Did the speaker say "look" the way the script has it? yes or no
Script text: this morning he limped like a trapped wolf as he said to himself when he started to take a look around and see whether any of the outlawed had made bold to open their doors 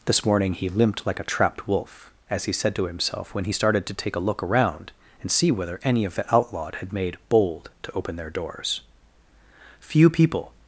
yes